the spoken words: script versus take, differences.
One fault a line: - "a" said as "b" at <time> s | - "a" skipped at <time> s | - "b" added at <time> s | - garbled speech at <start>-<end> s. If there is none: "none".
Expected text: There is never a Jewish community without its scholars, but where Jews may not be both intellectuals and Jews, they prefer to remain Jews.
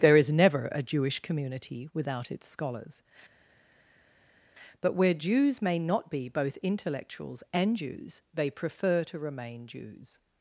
none